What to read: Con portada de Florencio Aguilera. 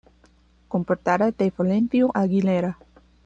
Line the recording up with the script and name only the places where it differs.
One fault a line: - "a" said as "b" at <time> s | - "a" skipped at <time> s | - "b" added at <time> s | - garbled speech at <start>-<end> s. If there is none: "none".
none